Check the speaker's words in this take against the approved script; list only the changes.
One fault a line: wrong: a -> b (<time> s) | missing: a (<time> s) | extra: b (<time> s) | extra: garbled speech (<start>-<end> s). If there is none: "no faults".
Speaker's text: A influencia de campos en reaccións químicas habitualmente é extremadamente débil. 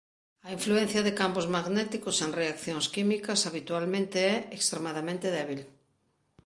extra: magnéticos (1.6 s)